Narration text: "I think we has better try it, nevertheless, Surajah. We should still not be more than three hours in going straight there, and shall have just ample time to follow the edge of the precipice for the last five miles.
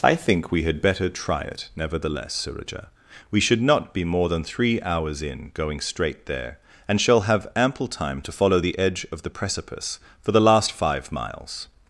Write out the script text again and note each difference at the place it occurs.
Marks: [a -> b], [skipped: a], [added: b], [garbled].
"I think we [has -> had] better try it, nevertheless, Surajah. We should [skipped: still] not be more than three hours in going straight there, and shall have [skipped: just] ample time to follow the edge of the precipice for the last five miles.